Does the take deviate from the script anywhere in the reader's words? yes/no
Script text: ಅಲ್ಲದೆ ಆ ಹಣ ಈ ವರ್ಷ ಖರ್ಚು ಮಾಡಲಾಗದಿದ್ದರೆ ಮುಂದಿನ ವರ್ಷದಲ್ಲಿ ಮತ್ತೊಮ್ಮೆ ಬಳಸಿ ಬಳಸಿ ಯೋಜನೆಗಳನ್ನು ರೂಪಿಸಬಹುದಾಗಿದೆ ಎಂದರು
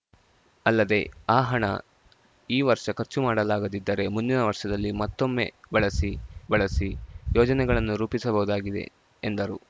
no